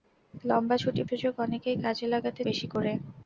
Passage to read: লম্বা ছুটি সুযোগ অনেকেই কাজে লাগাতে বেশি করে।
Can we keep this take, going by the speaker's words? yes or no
yes